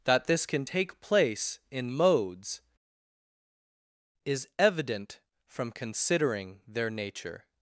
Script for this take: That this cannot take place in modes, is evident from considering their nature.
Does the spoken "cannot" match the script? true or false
false